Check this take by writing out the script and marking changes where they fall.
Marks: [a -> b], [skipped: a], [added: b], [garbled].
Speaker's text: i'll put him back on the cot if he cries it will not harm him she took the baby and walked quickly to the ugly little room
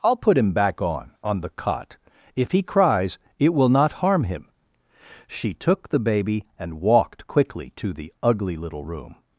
i'll put him back on [added: on] the cot if he cries it will not harm him she took the baby and walked quickly to the ugly little room